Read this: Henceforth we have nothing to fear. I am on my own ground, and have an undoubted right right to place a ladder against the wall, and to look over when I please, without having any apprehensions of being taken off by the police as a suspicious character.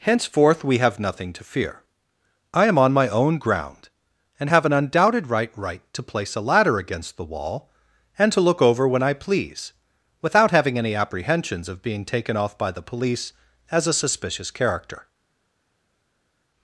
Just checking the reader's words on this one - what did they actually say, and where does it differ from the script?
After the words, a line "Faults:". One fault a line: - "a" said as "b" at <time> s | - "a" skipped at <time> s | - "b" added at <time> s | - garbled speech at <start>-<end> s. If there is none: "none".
Henceforth we have nothing to fear. I am on my own ground, and have an undoubted right right to place a ladder against the wall, and to look over when I please, without having any apprehensions of being taken off by the police as a suspicious character.
Faults:
none